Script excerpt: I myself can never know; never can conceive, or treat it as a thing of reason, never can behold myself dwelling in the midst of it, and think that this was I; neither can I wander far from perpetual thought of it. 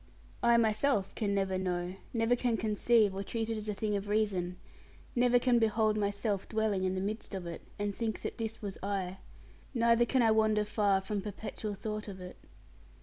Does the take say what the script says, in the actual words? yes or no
yes